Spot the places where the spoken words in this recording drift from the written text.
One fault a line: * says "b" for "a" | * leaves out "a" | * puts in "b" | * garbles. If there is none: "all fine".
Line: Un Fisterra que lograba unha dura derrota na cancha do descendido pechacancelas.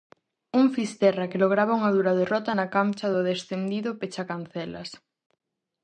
all fine